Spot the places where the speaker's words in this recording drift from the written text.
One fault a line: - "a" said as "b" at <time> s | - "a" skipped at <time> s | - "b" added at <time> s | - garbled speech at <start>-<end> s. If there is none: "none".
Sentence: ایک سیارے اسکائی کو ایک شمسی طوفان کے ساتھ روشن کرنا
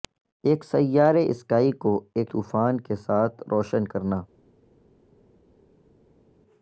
- "شمسی" skipped at 2.3 s